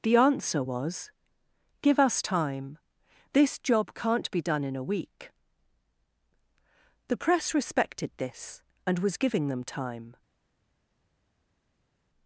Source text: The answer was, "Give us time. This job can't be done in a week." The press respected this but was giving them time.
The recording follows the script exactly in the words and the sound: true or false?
false